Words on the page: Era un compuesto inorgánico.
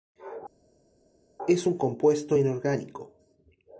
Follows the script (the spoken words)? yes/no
no